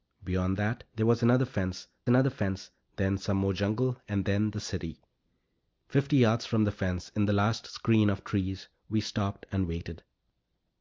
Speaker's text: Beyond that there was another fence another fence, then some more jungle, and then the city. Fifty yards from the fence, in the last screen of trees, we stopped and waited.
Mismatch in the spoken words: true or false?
false